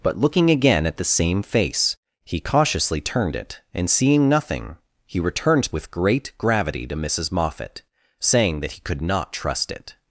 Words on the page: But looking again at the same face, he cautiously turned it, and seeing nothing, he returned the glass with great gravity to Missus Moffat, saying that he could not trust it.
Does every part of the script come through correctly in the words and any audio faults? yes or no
no